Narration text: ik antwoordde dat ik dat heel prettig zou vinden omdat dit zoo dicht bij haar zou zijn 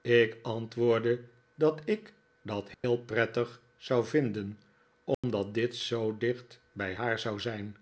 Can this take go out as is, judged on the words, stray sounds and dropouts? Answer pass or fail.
fail